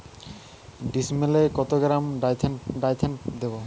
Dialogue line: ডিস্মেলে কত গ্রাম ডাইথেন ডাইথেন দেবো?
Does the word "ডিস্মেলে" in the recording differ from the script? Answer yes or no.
no